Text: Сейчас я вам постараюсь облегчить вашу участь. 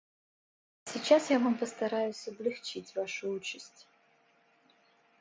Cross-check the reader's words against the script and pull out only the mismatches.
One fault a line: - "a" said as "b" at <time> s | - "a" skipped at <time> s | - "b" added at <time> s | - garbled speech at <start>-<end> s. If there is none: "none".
none